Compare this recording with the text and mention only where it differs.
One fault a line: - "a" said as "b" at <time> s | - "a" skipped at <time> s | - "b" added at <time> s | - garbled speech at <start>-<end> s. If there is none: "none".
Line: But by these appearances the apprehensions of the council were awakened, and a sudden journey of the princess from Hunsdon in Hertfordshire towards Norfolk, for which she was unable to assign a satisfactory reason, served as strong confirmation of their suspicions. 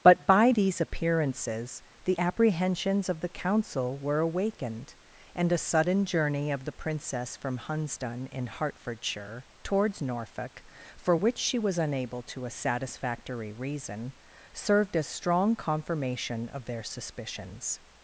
- "assign" skipped at 12.4 s